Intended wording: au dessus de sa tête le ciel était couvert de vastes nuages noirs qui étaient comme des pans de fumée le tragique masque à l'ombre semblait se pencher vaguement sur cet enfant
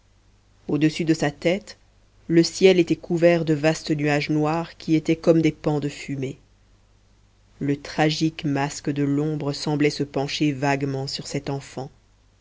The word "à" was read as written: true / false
false